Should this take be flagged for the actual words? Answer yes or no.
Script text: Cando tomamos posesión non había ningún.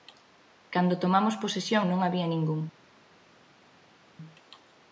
no